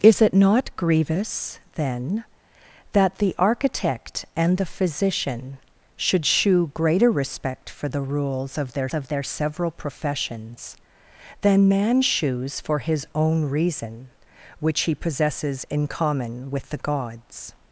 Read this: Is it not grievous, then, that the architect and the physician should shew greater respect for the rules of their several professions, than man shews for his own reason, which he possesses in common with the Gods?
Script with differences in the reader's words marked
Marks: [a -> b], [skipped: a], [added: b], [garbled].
Is it not grievous, then, that the architect and the physician should shew greater respect for the rules of their [added: of their] several professions, than man shews for his own reason, which he possesses in common with the Gods?